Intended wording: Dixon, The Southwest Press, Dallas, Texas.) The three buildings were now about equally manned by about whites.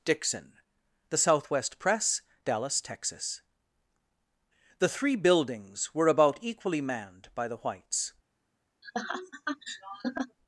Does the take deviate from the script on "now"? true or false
true